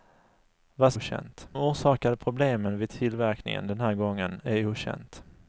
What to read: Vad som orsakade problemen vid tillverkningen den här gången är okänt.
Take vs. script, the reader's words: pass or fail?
fail